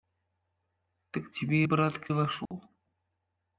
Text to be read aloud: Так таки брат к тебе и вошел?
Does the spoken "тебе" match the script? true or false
false